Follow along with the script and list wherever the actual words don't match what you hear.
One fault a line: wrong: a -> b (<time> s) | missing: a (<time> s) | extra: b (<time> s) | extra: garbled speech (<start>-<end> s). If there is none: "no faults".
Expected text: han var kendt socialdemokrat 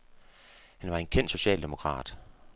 extra: en (1.0 s)